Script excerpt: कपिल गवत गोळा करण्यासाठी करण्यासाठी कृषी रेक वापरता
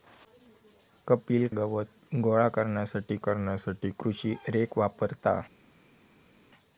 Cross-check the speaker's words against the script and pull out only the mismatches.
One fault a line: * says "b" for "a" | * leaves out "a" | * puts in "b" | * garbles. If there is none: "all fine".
all fine